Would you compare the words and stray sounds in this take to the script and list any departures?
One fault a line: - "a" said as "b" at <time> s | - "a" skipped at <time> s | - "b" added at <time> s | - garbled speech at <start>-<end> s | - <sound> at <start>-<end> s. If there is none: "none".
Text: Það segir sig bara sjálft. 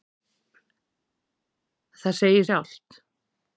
- "sig bara" skipped at 2.5 s